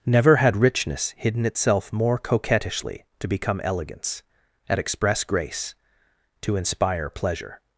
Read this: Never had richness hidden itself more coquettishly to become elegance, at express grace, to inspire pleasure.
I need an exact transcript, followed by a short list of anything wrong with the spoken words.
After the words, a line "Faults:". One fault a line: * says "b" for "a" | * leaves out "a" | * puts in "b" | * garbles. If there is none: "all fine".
Never had richness hidden itself more coquettishly to become elegance, at express grace, to inspire pleasure.
Faults:
all fine